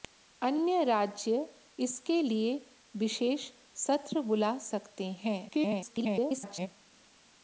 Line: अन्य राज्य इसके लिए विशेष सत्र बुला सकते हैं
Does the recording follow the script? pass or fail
fail